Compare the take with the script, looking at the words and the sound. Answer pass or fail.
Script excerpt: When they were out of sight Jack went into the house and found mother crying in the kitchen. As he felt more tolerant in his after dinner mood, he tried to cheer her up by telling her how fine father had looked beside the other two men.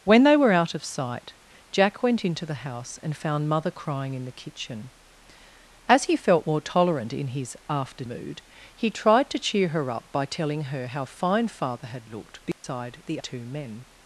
fail